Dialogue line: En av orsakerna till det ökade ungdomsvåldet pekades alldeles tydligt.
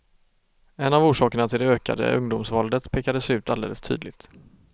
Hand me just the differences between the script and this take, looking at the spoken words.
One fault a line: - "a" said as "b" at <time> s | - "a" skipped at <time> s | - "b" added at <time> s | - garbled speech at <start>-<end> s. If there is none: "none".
- "ut" added at 3.3 s